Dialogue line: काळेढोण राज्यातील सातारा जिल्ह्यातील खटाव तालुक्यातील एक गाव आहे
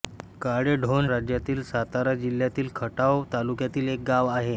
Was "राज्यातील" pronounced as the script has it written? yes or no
yes